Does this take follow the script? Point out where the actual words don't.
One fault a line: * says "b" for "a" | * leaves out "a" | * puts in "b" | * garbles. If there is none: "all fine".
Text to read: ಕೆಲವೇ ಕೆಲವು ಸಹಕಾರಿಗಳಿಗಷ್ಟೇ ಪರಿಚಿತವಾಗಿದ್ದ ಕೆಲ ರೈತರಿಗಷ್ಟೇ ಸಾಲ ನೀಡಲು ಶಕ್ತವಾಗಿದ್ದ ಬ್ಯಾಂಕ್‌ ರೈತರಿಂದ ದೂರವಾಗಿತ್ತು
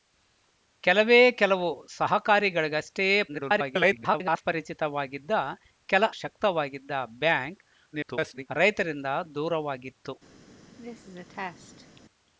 * garbles
* leaves out "ರೈತರಿಗಷ್ಟೇ ಸಾಲ ನೀಡಲು"
* garbles